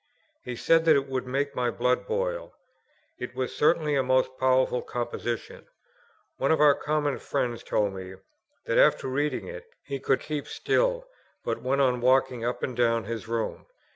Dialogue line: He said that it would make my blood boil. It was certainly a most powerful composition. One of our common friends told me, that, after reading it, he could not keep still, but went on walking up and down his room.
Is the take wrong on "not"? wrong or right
wrong